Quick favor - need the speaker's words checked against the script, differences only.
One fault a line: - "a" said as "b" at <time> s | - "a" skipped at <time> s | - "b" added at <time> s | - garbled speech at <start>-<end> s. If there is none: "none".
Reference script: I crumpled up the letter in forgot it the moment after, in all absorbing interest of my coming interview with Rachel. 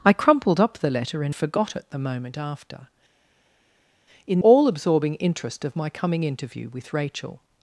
none